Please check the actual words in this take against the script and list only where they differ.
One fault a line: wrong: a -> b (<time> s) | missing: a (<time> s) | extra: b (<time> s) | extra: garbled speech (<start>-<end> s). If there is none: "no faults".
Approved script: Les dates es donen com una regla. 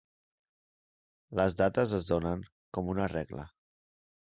no faults